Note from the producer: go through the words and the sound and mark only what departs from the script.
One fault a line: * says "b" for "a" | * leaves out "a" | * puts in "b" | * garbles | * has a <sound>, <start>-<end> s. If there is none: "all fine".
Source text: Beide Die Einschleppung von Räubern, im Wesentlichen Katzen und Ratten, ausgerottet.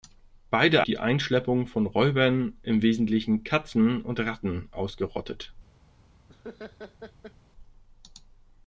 * has a laugh, 6.3-7.3 s